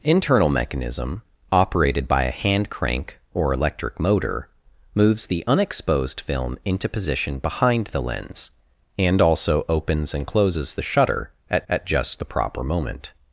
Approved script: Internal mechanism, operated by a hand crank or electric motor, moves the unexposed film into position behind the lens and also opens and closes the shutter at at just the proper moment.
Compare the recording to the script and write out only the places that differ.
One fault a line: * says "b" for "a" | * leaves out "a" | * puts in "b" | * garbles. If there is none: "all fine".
all fine